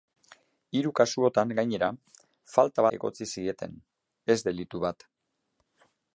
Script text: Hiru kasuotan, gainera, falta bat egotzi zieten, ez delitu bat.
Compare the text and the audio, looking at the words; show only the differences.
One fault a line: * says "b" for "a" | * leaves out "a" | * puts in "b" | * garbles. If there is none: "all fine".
* leaves out "bat"